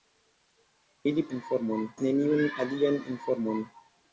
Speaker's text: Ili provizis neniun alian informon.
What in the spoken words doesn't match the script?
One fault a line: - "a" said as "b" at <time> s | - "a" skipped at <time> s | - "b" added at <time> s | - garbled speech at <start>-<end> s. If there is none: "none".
- "provizis" said as "informon" at 1.4 s